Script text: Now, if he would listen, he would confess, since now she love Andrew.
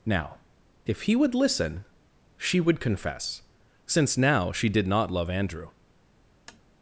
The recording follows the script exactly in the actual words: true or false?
false